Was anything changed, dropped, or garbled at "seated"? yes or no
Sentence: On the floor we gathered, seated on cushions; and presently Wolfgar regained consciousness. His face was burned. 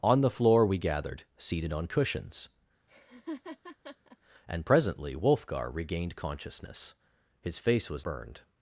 no